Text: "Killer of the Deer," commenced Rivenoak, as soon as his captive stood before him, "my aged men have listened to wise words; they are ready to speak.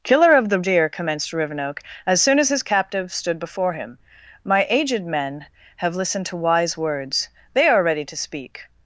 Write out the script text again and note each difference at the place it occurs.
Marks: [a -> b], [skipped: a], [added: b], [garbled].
"Killer of the Deer," commenced Rivenoak, as soon as his captive stood before him, "my aged men have listened to wise words; they are ready to speak.